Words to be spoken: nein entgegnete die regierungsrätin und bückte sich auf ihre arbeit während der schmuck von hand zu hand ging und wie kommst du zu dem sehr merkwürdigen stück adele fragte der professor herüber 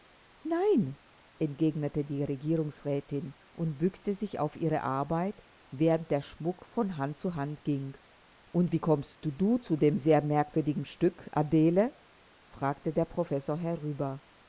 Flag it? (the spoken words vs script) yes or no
no